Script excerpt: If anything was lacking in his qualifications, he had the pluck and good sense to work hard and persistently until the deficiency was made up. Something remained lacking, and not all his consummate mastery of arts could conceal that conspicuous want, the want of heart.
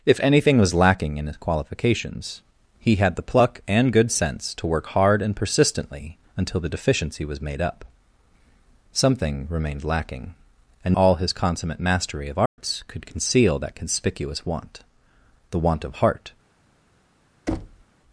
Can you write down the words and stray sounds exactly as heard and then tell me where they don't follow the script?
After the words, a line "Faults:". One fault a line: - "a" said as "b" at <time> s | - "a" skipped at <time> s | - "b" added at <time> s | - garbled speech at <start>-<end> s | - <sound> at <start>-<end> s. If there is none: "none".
If anything was lacking in his qualifications, he had the pluck and good sense to work hard and persistently until the deficiency was made up. Something remained lacking, and all his consummate mastery of arts could conceal that conspicuous want, the want of heart.
Faults:
- "not" skipped at 11.0 s
- dropout at 12.5-12.6 s
- thud at 17.5-17.8 s